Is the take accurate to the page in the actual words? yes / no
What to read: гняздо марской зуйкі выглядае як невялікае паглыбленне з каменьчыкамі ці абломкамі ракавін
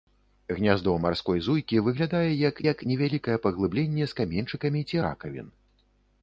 no